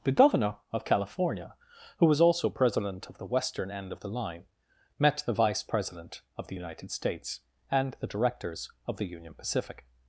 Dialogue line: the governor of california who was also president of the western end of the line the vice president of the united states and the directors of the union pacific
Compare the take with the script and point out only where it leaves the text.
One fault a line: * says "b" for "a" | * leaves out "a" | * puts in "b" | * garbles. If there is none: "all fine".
* puts in "met"